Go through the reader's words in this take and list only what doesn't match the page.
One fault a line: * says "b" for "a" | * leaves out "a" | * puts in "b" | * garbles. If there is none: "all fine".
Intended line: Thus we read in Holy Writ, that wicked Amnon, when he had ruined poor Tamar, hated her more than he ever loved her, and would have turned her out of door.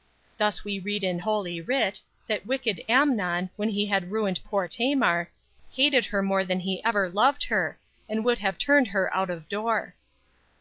all fine